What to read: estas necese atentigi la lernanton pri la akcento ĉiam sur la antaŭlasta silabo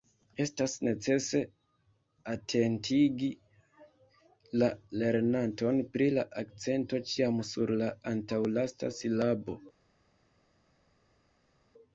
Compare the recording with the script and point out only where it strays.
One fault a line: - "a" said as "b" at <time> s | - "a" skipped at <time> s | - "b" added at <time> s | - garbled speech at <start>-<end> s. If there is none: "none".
none